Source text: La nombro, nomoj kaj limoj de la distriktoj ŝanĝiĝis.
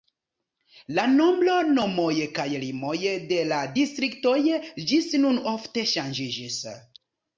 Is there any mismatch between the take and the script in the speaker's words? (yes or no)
yes